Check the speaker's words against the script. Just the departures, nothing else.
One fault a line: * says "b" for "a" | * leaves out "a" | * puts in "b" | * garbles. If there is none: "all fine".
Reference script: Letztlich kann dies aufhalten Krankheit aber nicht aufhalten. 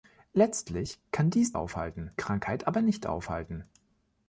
all fine